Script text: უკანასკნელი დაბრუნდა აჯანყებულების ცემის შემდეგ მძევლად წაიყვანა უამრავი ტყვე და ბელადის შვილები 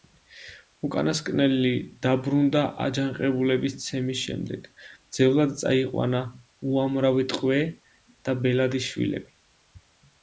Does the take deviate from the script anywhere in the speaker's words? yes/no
no